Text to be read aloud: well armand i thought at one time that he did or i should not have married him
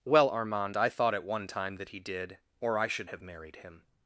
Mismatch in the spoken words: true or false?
true